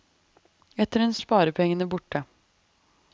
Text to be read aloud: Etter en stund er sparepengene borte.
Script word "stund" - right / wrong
wrong